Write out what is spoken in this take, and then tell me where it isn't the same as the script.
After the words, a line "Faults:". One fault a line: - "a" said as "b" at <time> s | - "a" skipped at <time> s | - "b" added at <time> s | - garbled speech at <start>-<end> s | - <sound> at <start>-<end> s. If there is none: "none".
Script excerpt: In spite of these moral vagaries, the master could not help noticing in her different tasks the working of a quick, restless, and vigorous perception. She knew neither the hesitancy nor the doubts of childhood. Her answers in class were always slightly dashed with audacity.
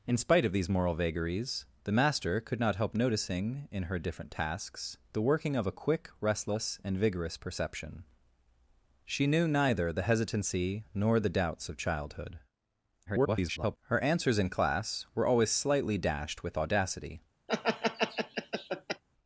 In spite of these moral vagaries, the master could not help noticing in her different tasks the working of a quick, restless, and vigorous perception. She knew neither the hesitancy nor the doubts of childhood. [garbled] Her answers in class were always slightly dashed with audacity.
Faults:
- garbled speech at 13.1-13.8 s
- laugh at 17.5-19.0 s